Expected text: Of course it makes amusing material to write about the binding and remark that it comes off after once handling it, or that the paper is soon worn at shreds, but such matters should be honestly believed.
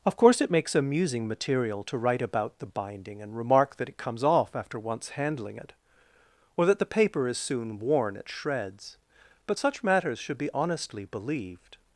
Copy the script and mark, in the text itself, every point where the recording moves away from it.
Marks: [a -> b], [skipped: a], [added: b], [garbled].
Of course it makes amusing material to write about the binding and remark that it comes off after once handling it, or that the paper is soon worn at shreds, but such matters should be honestly believed.